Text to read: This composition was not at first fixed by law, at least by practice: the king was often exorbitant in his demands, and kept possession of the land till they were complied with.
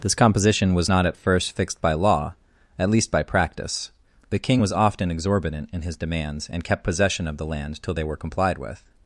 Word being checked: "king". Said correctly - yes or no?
yes